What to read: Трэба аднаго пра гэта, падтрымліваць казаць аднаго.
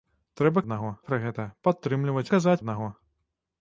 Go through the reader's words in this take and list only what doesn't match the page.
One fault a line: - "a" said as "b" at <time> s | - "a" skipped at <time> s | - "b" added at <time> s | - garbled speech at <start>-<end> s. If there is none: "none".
none